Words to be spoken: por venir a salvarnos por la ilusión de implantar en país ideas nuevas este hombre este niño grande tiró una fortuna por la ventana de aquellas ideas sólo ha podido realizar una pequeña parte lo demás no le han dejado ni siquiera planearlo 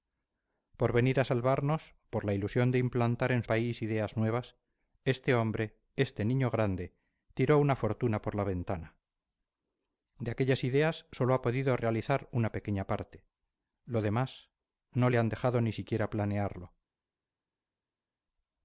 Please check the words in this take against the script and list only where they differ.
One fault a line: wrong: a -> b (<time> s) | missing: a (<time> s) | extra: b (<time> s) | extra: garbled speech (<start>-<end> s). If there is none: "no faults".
no faults